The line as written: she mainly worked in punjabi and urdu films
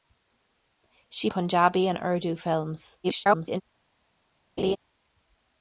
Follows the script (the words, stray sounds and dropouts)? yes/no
no